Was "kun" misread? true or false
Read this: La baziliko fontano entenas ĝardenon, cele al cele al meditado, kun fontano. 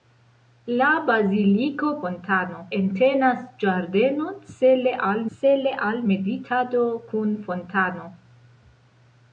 false